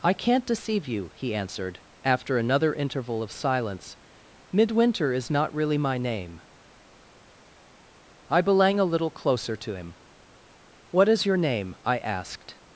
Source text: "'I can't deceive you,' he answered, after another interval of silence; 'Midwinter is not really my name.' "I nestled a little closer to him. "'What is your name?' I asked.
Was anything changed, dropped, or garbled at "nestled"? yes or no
yes